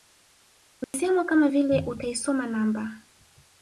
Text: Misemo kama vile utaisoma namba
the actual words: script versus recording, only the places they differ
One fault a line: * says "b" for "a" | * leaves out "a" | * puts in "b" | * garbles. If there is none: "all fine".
all fine